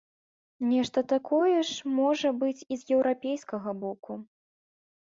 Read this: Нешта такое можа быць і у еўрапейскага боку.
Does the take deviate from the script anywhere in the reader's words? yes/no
yes